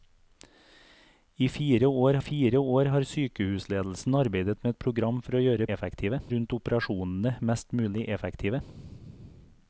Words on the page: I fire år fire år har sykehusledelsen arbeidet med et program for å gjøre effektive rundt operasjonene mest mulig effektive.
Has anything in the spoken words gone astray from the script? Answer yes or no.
no